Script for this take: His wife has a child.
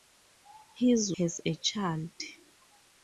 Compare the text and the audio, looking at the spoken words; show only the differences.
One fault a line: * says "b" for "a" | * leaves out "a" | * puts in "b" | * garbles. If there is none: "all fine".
* leaves out "wife"